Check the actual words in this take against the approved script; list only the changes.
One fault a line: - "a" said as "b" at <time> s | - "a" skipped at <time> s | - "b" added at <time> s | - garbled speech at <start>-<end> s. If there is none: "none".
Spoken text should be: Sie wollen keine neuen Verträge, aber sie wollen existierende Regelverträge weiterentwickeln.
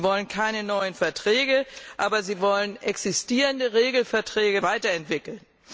none